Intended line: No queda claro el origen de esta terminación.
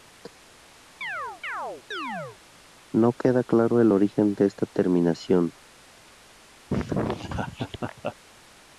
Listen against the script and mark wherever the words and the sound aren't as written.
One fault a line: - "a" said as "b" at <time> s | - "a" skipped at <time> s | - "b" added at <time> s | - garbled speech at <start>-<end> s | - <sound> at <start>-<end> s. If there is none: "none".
- chirp at 1.0-2.4 s
- laugh at 6.7-8.2 s